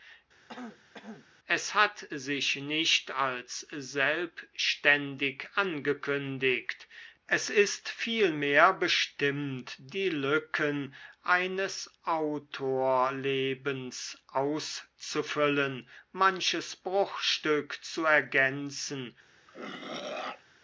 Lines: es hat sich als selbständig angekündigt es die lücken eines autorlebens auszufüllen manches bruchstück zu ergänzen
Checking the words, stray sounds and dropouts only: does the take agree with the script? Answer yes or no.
no